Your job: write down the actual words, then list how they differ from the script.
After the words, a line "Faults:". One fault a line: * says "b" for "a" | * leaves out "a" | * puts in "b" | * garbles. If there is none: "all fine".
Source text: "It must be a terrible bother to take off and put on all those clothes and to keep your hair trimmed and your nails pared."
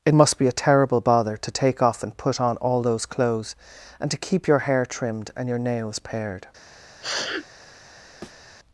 "It must be a terrible bother to take off and put on all those clothes and to keep your hair trimmed and your nails pared."
Faults:
all fine